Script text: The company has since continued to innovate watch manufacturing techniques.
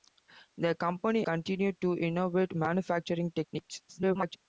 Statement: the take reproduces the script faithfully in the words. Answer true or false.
false